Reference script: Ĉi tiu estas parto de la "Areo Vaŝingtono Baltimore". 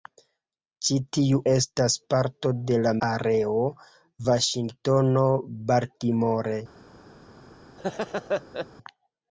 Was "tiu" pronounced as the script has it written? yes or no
yes